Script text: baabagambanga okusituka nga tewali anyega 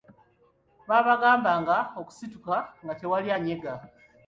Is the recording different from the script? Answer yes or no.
no